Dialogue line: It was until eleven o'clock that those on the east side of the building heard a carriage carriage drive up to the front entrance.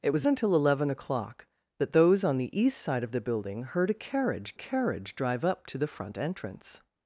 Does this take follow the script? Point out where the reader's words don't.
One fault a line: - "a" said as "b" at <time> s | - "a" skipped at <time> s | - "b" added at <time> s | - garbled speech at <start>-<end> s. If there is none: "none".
none